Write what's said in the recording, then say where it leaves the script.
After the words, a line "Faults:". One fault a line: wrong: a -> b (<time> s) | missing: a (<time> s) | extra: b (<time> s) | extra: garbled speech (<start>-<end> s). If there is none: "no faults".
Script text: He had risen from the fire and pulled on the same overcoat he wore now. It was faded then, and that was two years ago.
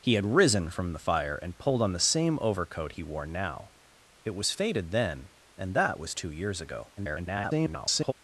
He had risen from the fire and pulled on the same overcoat he wore now. It was faded then, and that was two years ago. [garbled]
Faults:
extra: garbled speech (7.0-8.1 s)